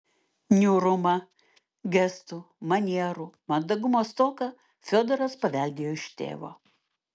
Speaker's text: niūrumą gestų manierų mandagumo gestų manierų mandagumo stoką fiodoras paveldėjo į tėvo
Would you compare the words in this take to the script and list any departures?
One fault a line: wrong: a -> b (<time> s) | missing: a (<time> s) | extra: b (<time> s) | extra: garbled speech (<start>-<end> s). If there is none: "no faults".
missing: gestų manierų mandagumo (4.0 s)
wrong: į -> iš (6.0 s)